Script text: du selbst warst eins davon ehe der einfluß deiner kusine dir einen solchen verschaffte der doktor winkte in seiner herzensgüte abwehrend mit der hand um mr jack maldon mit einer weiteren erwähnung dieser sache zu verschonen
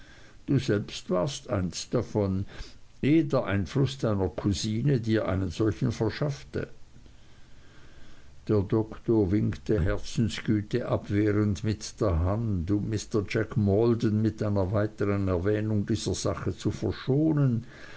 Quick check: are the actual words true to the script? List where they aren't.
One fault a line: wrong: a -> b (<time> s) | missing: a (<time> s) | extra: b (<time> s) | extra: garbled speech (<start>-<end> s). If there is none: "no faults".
missing: in seiner (9.8 s)